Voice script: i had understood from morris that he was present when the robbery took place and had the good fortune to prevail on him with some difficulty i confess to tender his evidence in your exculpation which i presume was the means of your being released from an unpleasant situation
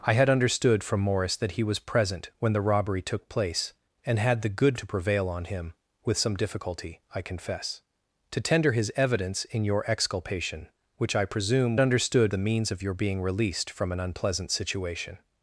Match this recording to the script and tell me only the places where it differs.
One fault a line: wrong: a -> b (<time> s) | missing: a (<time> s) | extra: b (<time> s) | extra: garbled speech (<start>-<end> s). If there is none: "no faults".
missing: fortune (4.8 s)
wrong: was -> understood (11.8 s)